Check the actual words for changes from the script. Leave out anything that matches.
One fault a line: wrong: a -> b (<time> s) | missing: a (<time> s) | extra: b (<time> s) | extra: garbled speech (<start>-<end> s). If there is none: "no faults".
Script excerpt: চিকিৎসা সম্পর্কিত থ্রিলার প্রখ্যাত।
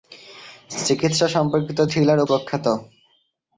no faults